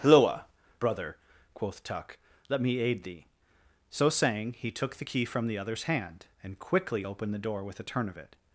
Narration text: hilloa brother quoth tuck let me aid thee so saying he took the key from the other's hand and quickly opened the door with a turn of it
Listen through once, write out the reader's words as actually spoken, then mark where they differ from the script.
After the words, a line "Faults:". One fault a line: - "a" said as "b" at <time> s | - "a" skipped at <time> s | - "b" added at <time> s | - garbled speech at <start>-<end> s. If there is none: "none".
hilloa brother quoth tuck let me aid thee so saying he took the key from the other's hand and quickly opened the door with a turn of it
Faults:
none